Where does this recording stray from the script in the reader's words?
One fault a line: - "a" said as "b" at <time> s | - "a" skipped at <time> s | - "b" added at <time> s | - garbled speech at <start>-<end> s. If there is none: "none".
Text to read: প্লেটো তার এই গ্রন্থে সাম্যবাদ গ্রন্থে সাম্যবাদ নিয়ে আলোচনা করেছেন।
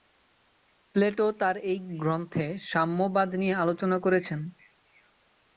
- "গ্রন্থে সাম্যবাদ" skipped at 3.3 s